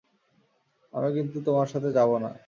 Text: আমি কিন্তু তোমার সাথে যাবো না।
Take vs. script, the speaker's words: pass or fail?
pass